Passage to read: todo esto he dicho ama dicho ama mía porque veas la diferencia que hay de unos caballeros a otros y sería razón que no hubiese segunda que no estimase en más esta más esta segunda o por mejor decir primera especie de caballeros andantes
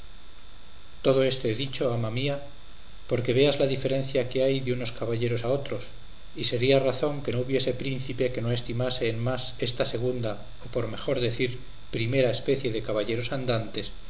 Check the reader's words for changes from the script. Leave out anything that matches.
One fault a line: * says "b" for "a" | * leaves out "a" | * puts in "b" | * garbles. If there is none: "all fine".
* leaves out "dicho ama"
* says "príncipe" for "segunda"
* leaves out "más esta"